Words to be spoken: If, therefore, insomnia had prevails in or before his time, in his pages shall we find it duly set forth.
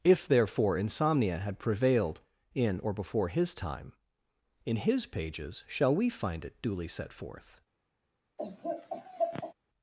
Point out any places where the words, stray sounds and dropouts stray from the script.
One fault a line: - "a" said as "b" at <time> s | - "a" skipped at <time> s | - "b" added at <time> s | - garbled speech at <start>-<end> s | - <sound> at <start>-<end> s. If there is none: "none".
- "prevails" said as "prevailed" at 1.6 s
- laugh at 8.4-9.5 s